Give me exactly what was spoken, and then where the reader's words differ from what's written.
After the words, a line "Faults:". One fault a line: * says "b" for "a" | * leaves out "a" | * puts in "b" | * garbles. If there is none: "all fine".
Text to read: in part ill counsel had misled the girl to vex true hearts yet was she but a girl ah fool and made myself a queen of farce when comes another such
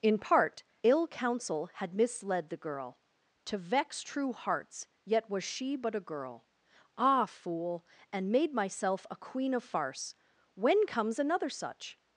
in part ill counsel had misled the girl to vex true hearts yet was she but a girl ah fool and made myself a queen of farce when comes another such
Faults:
all fine